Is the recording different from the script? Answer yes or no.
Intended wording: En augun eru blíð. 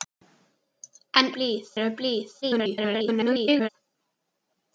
yes